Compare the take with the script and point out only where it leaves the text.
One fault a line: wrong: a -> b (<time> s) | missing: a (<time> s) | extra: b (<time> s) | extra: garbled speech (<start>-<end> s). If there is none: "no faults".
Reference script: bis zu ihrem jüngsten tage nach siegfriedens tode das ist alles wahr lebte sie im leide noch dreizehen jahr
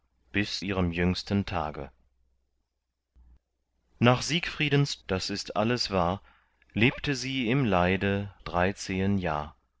missing: zu (0.7 s)
missing: tode (5.0 s)
missing: noch (8.3 s)